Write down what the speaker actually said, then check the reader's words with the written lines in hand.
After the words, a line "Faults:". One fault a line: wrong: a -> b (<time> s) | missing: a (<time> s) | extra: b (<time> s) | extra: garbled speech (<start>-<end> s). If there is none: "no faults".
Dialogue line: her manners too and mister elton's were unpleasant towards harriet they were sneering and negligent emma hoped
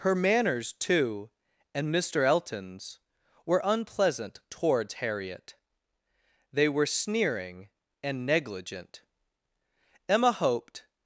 her manners too and mister elton's were unpleasant towards harriet they were sneering and negligent emma hoped
Faults:
no faults